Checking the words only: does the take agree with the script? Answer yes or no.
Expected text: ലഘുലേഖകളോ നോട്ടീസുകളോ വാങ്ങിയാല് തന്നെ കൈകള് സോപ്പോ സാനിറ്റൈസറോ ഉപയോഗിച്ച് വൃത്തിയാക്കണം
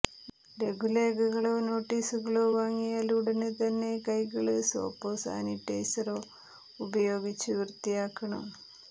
no